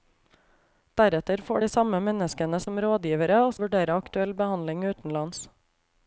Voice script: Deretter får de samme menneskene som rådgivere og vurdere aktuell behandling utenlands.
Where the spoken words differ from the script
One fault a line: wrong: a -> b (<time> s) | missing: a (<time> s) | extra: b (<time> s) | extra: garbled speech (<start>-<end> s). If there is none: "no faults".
no faults